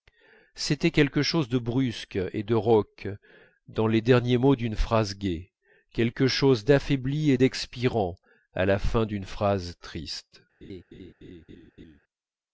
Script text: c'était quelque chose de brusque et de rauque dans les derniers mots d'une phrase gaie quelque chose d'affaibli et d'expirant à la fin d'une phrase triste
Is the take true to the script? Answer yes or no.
yes